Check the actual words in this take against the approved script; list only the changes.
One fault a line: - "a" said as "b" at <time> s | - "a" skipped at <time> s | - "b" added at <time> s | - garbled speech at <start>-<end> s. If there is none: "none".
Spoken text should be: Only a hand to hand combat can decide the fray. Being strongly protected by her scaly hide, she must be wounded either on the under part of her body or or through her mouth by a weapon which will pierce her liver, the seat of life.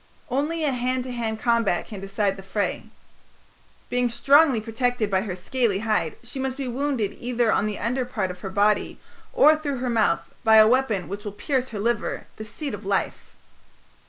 - "or" skipped at 9.6 s